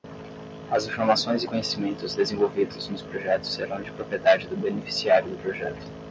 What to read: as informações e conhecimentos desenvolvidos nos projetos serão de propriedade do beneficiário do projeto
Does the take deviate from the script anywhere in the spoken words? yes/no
no